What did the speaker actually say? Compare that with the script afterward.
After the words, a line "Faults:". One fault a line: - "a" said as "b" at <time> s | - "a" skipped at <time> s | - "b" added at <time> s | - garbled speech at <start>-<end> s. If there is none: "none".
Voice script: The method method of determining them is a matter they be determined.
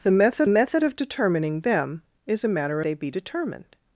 The method method of determining them is a matter they be determined.
Faults:
none